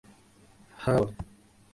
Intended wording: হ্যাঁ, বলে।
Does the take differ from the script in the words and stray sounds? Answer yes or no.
no